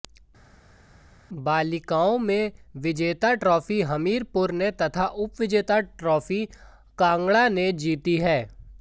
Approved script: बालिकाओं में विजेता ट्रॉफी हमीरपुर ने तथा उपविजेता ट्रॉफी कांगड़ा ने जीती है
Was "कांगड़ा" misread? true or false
false